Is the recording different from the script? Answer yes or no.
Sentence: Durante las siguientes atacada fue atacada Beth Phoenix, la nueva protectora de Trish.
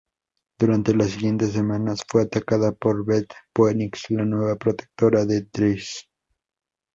yes